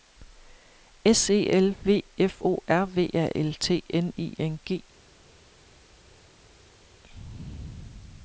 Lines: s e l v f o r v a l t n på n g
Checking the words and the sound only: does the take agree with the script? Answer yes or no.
no